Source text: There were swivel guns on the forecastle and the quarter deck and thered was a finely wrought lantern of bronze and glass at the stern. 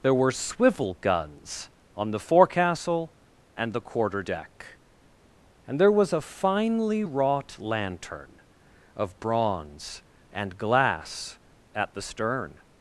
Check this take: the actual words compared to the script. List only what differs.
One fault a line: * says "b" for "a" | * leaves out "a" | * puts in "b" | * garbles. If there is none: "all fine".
* says "there" for "thered"